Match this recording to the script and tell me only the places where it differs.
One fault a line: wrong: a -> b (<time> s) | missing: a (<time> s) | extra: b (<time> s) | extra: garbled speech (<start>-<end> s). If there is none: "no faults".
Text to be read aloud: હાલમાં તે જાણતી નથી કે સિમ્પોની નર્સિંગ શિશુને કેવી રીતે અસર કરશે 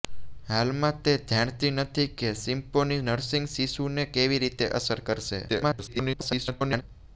extra: garbled speech (5.5-6.8 s)